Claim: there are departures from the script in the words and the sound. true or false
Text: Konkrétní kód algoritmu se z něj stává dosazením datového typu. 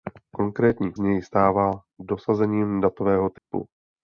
true